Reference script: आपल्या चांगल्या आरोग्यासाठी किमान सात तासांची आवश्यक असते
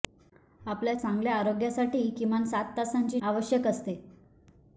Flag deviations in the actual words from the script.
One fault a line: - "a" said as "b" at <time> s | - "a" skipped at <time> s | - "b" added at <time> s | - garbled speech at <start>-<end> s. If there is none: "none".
none